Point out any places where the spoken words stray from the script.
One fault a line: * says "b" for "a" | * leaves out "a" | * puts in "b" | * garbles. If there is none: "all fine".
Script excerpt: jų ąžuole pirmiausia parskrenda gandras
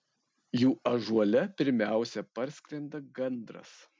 all fine